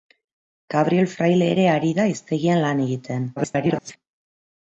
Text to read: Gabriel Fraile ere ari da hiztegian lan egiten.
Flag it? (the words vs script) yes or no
yes